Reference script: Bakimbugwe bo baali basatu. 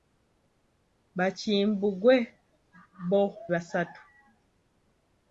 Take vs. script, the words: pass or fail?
fail